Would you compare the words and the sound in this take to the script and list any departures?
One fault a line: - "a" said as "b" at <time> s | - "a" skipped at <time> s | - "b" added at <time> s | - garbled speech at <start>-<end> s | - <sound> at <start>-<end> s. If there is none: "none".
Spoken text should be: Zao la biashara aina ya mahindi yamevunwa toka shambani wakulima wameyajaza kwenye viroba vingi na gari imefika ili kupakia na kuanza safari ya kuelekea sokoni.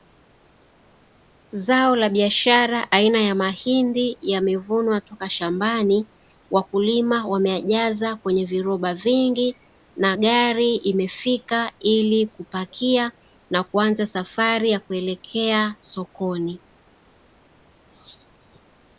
none